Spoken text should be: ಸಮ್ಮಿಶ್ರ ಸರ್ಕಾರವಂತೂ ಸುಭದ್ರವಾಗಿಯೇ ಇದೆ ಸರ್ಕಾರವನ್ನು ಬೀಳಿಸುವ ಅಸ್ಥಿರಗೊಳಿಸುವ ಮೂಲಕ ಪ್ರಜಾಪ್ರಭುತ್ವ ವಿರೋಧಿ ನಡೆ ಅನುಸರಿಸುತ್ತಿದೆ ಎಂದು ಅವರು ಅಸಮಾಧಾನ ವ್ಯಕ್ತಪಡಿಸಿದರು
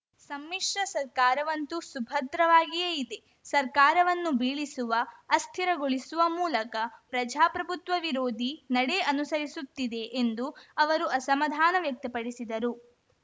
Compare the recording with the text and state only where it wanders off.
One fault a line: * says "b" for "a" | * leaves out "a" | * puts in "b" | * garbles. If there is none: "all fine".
all fine